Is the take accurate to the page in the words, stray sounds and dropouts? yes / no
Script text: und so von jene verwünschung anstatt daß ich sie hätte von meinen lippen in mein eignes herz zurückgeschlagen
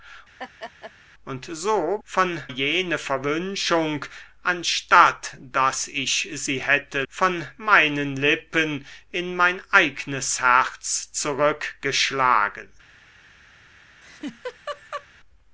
no